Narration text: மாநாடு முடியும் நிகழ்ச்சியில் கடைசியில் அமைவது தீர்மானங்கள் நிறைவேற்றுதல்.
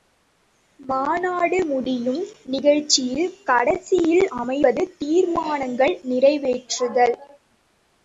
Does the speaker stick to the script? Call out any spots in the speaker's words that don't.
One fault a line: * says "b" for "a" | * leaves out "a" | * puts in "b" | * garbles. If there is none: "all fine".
all fine